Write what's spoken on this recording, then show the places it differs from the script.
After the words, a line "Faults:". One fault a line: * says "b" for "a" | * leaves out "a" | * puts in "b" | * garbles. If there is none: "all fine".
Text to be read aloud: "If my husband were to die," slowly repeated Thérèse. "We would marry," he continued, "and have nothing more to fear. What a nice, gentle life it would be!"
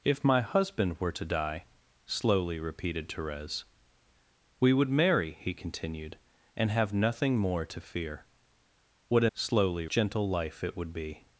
"If my husband were to die," slowly repeated Thérèse. "We would marry," he continued, "and have nothing more to fear. What a slowly, gentle life it would be!"
Faults:
* says "slowly" for "nice"